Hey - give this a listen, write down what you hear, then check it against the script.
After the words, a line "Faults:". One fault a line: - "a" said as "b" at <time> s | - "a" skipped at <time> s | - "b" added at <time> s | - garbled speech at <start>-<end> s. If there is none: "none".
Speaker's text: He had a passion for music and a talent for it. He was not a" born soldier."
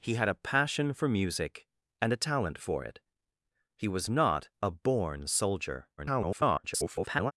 He had a passion for music and a talent for it. He was not a" born soldier." [garbled]
Faults:
- garbled speech at 6.0-7.3 s